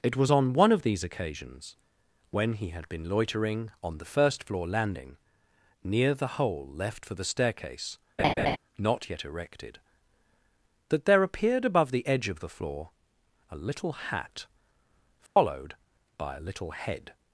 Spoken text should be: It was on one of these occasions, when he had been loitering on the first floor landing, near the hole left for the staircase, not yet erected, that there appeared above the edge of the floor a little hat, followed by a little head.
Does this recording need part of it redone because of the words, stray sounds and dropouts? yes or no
yes